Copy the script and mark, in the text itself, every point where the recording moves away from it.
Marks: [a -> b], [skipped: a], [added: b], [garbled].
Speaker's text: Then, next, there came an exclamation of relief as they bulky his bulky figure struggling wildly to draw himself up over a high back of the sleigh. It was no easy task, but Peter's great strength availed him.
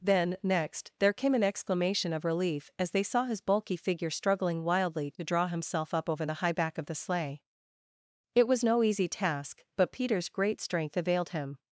Then, next, there came an exclamation of relief as they [bulky -> saw] his bulky figure struggling wildly to draw himself up over [a -> the] high back of the sleigh. It was no easy task, but Peter's great strength availed him.